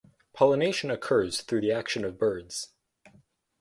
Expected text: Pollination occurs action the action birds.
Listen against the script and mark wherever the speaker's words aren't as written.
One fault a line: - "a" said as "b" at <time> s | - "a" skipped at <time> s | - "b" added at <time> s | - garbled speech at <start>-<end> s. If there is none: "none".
- "action" said as "through" at 1.4 s
- "of" added at 2.0 s